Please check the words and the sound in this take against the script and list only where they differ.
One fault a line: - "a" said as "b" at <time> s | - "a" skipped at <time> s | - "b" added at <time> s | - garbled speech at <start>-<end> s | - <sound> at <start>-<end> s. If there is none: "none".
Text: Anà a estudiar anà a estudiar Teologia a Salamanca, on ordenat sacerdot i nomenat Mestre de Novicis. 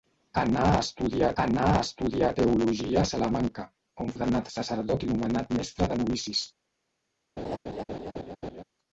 - laugh at 7.4-8.6 s